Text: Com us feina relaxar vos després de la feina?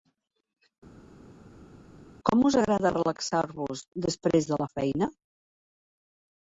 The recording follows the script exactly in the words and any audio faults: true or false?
false